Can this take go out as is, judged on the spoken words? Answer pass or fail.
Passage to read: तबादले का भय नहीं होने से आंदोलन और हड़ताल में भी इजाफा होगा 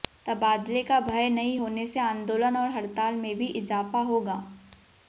pass